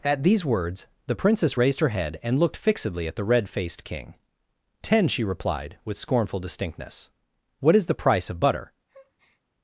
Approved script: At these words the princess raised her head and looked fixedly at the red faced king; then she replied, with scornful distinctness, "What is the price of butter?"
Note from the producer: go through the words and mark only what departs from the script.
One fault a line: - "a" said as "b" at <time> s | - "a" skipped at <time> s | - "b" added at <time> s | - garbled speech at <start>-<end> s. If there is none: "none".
- "then" said as "ten" at 4.8 s